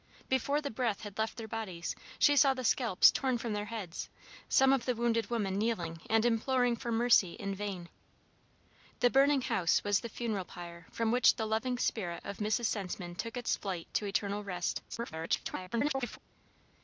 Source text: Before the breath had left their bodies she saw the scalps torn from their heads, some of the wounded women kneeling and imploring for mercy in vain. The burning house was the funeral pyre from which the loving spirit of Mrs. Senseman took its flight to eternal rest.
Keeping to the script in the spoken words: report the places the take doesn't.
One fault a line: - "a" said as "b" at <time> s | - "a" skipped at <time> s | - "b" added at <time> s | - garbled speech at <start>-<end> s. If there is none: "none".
- garbled speech at 14.9-16.2 s